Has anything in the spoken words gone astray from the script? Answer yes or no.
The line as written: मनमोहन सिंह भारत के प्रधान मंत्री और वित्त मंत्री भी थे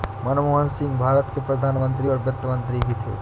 no